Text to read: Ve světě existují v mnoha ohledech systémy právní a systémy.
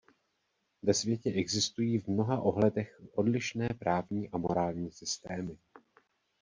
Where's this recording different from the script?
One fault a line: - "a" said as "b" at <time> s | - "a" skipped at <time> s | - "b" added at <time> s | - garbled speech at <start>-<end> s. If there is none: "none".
- "systémy" said as "odlišné" at 3.1 s
- "morální" added at 4.4 s